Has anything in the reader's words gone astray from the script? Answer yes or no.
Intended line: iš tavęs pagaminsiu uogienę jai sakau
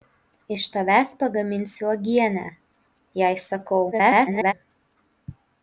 yes